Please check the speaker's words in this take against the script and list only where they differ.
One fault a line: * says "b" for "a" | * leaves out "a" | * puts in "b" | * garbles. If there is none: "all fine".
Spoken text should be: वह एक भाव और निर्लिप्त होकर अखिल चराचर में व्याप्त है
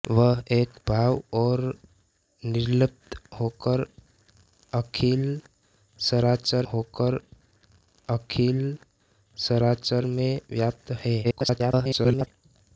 * puts in "होकर अखिल चराचर"
* garbles